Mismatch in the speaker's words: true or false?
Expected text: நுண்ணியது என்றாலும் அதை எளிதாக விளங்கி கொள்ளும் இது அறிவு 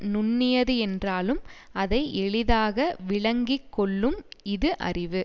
false